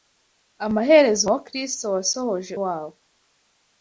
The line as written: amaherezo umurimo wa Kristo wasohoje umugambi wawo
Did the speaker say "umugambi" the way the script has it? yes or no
no